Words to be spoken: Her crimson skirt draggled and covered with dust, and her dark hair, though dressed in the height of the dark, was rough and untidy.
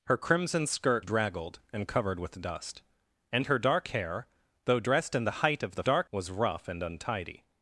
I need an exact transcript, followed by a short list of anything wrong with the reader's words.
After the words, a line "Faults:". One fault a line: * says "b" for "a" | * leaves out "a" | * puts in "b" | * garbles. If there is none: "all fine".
Her crimson skirt draggled and covered with dust, and her dark hair, though dressed in the height of the dark, was rough and untidy.
Faults:
all fine